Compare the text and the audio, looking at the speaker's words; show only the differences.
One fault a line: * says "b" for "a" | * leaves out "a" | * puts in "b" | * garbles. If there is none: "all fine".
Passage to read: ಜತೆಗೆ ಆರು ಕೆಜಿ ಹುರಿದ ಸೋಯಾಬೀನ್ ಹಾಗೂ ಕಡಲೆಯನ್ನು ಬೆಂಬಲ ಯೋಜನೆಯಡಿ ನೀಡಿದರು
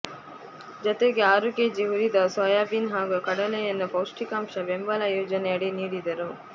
* puts in "ಪೌಷ್ಟಿಕಾಂಶ"